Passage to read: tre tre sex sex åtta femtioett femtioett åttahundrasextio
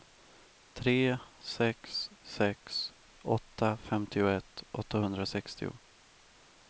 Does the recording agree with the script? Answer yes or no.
no